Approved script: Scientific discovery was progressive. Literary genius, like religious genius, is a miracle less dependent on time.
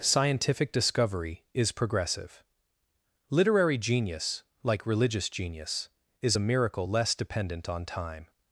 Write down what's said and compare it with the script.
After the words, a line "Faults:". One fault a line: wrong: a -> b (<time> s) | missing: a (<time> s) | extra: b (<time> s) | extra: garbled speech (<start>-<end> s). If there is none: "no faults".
Scientific discovery is progressive. Literary genius, like religious genius, is a miracle less dependent on time.
Faults:
wrong: was -> is (1.5 s)